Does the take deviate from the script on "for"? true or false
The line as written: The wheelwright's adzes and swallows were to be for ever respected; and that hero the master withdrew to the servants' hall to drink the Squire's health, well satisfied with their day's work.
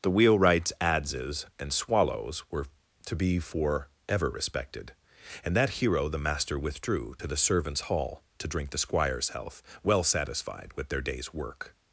false